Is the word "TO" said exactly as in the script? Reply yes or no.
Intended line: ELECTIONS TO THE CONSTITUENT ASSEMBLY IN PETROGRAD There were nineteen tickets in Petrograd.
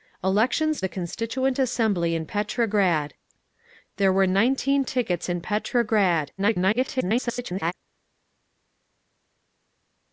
no